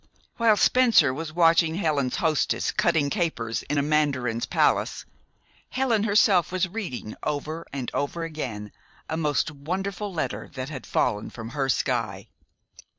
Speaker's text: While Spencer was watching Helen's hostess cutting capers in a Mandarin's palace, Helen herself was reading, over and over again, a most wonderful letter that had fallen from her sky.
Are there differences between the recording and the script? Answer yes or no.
no